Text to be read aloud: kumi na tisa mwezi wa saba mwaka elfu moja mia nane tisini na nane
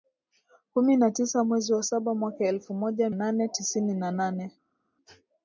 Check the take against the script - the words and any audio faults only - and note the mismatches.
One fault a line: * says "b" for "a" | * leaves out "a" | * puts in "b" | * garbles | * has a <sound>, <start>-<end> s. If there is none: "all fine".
* leaves out "mia"